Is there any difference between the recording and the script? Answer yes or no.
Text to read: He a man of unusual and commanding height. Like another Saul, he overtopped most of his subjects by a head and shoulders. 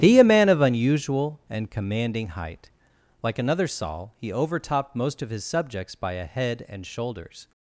no